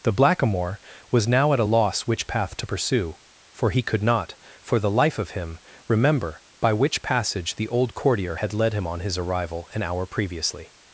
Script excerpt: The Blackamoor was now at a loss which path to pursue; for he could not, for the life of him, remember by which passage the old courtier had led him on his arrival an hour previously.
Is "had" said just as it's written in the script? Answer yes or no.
yes